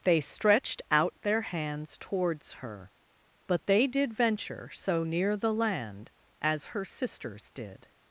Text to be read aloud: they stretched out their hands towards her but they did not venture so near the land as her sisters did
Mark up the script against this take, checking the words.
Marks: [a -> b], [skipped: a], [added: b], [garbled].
they stretched out their hands towards her but they did [skipped: not] venture so near the land as her sisters did